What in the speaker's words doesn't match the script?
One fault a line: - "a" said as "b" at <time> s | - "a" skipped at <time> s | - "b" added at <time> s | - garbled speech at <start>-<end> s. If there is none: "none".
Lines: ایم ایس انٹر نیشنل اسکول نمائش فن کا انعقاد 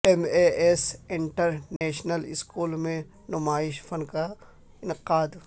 - "اے" added at 0.2 s
- "میں" added at 2.8 s